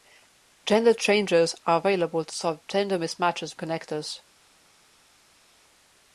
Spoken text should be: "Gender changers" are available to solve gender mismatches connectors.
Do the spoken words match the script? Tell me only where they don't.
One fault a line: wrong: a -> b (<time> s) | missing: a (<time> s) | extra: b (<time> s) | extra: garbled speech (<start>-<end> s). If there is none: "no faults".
no faults